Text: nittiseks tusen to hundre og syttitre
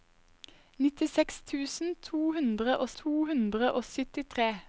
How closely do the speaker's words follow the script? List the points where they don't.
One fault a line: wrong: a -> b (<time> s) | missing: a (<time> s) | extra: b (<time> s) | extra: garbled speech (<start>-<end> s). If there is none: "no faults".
extra: to hundre og (3.0 s)